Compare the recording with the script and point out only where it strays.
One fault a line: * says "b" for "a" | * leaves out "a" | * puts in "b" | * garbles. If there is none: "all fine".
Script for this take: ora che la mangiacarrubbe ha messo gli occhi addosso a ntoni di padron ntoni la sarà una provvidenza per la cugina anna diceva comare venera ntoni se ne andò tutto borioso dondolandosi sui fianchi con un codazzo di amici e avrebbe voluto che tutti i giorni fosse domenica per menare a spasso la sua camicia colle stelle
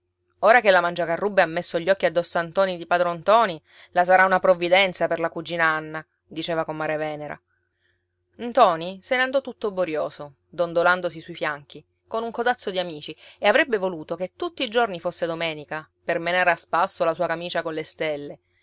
all fine